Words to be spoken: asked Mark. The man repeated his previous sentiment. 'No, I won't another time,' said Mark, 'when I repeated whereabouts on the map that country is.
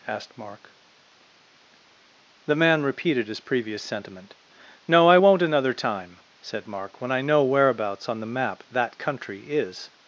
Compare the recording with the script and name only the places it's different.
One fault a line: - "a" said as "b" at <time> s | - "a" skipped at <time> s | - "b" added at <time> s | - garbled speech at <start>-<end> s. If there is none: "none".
- "repeated" said as "know" at 7.2 s